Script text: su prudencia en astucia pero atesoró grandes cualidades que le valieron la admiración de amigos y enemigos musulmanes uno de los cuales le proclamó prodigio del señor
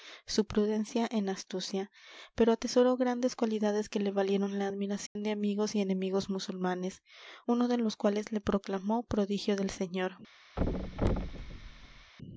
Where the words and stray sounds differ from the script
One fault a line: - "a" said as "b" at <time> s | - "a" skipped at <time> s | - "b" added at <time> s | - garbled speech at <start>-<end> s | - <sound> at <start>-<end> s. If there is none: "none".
- dropout at 5.1-5.2 s
- thud at 10.6-12.1 s